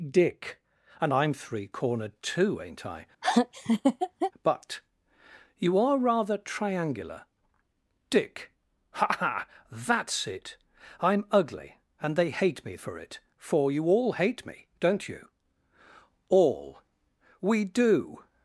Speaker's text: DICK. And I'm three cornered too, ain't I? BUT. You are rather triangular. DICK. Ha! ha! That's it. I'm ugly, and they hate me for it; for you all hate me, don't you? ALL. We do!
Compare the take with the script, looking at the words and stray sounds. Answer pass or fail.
fail